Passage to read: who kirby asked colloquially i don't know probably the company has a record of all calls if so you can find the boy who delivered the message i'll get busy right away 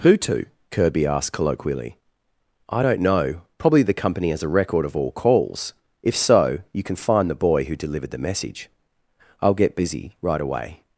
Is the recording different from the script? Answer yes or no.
yes